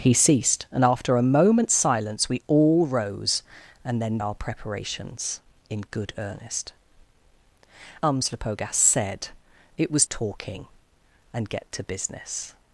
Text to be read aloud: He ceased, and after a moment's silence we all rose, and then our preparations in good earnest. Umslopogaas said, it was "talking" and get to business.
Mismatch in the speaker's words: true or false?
false